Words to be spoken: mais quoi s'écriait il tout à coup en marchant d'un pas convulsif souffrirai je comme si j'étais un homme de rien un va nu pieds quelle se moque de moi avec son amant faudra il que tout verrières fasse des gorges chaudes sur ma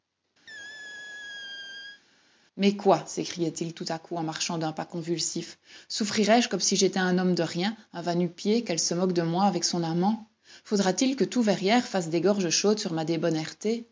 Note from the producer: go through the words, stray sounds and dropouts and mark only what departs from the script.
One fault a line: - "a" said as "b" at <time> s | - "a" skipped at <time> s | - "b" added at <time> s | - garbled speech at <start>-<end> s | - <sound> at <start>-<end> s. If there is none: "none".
- squeak at 0.5-2.0 s
- "t" added at 10.9 s